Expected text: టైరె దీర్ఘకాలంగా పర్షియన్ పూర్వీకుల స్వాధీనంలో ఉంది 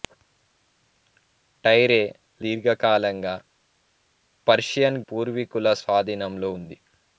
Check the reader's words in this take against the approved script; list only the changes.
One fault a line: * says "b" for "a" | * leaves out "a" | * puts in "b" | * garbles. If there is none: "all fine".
all fine